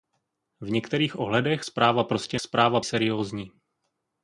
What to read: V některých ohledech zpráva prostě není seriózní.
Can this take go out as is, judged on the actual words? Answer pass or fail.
fail